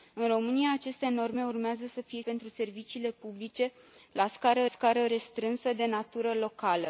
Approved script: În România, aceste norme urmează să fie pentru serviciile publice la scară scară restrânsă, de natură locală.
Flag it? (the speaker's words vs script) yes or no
no